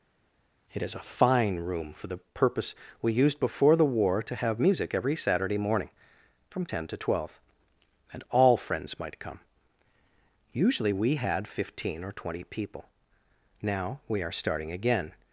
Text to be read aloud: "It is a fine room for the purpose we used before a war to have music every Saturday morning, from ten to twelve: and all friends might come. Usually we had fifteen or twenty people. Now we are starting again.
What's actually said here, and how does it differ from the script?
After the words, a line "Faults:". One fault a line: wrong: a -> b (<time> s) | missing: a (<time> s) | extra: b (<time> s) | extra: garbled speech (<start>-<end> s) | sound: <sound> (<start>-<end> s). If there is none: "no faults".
"It is a fine room for the purpose we used before the war to have music every Saturday morning, from ten to twelve: and all friends might come. Usually we had fifteen or twenty people. Now we are starting again.
Faults:
wrong: a -> the (3.7 s)